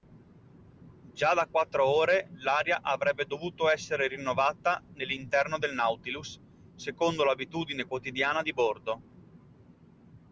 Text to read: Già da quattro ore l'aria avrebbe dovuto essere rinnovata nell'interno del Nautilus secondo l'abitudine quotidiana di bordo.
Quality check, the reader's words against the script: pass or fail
pass